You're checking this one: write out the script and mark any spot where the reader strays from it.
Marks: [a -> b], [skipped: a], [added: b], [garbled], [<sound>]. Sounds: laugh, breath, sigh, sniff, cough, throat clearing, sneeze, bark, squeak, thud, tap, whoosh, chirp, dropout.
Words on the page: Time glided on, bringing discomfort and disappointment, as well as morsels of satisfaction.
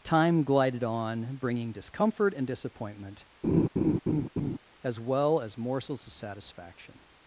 Time glided on, bringing discomfort and disappointment, [laugh] as well as morsels of satisfaction.